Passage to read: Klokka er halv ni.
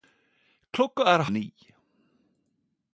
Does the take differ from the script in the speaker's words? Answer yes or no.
yes